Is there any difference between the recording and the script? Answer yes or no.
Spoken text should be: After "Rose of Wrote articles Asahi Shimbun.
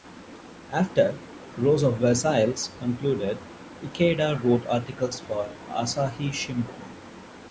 yes